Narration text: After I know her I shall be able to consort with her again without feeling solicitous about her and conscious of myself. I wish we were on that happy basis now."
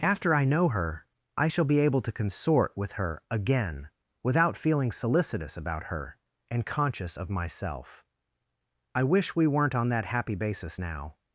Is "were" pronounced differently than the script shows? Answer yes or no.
yes